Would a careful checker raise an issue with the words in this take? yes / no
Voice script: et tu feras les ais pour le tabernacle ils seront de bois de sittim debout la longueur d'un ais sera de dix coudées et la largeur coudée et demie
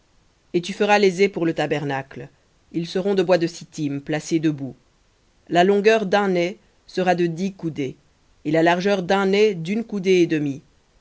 yes